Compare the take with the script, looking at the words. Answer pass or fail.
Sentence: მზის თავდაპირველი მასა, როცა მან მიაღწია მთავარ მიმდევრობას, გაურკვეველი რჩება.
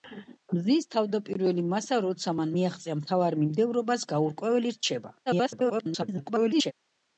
fail